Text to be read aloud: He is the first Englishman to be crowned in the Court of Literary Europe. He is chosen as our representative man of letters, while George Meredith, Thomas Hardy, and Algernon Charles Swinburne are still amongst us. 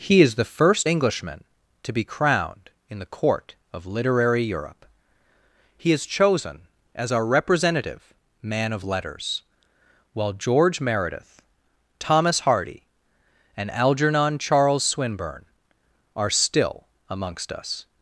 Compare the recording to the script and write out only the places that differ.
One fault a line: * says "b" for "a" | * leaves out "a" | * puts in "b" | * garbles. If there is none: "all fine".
all fine